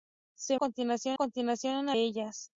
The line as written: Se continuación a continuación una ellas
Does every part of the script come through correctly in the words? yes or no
yes